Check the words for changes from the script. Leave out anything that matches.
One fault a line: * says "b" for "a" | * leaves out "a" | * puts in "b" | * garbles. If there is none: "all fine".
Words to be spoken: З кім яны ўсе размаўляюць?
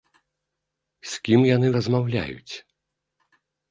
* leaves out "ўсе"